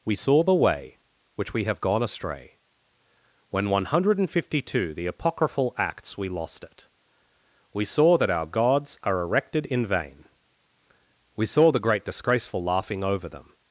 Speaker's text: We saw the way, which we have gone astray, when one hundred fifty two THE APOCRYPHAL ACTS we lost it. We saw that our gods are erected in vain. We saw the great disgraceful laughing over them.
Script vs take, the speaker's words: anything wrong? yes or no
no